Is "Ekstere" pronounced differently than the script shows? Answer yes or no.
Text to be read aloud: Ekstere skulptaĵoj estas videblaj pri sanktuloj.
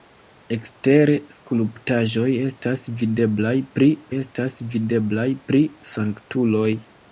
no